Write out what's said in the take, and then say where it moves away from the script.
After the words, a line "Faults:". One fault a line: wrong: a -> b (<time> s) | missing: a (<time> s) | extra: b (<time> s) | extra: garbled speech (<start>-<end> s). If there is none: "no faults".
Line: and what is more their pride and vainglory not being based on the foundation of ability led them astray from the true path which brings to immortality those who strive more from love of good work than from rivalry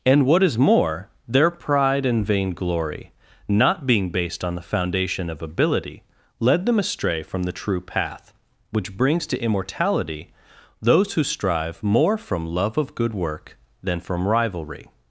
and what is more their pride and vainglory not being based on the foundation of ability led them astray from the true path which brings to immortality those who strive more from love of good work than from rivalry
Faults:
no faults